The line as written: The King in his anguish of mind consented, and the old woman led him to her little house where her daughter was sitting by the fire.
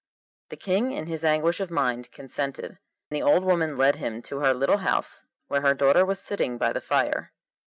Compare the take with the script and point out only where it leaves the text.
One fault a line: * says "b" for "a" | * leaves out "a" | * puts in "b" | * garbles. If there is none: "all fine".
* leaves out "and"